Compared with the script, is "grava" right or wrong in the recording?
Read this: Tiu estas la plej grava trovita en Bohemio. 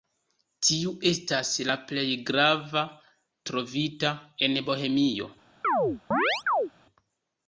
right